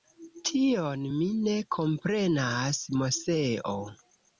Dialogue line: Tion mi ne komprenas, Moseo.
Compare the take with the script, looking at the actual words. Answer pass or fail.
pass